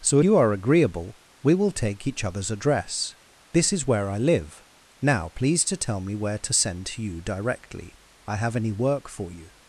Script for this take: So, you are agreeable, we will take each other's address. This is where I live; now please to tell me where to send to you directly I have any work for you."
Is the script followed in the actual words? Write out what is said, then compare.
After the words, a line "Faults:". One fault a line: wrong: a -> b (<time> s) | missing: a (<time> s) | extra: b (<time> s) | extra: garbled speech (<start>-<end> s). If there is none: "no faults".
So, you are agreeable, we will take each other's address. This is where I live; now please to tell me where to send to you directly I have any work for you."
Faults:
no faults